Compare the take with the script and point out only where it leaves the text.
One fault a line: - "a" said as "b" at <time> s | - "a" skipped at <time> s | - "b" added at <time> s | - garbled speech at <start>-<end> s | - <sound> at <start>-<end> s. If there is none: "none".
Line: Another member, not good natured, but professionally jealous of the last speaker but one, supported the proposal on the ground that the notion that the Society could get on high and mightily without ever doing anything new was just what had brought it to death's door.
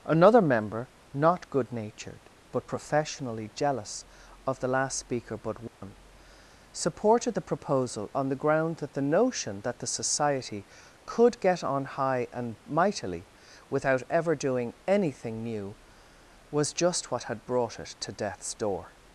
- dropout at 5.7-5.8 s